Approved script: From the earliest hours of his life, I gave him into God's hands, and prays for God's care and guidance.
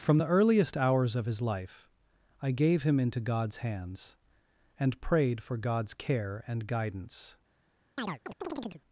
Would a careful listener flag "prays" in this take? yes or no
yes